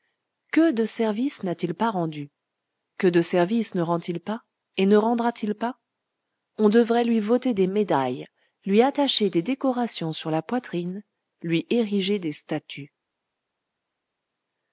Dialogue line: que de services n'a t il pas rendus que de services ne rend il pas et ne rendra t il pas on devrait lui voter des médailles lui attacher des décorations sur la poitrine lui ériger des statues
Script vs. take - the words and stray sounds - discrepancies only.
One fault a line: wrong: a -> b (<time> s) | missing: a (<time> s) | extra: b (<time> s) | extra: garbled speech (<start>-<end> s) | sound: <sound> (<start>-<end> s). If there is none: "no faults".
no faults